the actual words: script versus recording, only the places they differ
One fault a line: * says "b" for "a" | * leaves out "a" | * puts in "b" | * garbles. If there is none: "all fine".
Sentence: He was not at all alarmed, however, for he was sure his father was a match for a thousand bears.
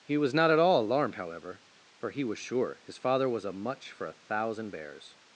* says "much" for "match"